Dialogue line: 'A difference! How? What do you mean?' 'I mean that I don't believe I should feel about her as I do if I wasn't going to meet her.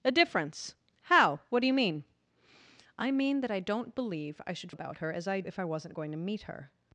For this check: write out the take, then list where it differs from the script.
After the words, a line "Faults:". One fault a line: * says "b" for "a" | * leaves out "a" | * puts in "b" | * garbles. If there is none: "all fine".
'A difference! How? What do you mean?' 'I mean that I don't believe I should about her as I if I wasn't going to meet her.
Faults:
* leaves out "feel"
* leaves out "do"